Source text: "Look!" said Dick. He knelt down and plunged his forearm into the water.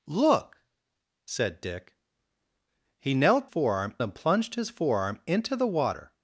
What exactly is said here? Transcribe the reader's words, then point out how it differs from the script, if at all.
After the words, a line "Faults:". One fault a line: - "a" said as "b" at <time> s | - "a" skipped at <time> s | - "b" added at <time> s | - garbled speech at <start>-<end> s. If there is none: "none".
"Look!" said Dick. He knelt forearm and plunged his forearm into the water.
Faults:
- "down" said as "forearm" at 3.4 s